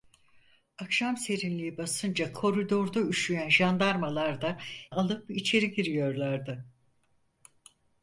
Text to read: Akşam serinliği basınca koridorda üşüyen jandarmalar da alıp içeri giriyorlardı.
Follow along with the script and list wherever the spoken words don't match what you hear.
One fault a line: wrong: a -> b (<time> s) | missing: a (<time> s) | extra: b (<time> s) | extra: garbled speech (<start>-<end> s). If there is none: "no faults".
no faults